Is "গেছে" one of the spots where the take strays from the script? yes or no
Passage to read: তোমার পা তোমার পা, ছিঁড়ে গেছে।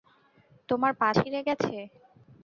no